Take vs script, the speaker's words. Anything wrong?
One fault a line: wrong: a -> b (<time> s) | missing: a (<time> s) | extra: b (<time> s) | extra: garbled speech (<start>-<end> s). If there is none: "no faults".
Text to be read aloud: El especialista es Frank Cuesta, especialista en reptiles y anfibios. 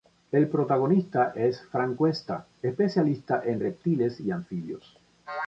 wrong: especialista -> protagonista (0.5 s)